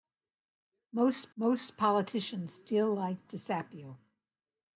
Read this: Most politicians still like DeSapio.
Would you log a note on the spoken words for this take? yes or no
yes